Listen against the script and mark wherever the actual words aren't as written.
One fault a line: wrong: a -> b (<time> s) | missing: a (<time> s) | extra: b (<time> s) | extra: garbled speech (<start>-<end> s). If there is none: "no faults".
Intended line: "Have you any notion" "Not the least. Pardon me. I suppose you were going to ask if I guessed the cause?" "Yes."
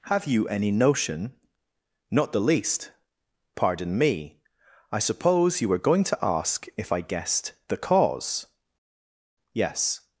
no faults